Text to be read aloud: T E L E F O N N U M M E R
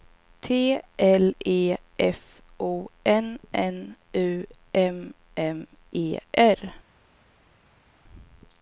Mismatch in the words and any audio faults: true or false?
true